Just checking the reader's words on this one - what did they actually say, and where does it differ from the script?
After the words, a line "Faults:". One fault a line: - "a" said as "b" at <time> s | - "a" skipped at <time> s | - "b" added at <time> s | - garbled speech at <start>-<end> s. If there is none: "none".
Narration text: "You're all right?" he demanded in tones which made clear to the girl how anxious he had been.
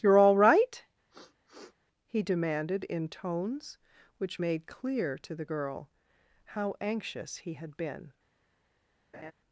"You're all right?" he demanded in tones which made clear to the girl how anxious he had been.
Faults:
none